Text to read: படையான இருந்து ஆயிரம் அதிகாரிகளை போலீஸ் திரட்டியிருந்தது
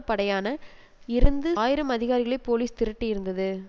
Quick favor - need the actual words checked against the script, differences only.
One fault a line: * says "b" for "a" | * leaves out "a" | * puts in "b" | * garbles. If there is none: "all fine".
all fine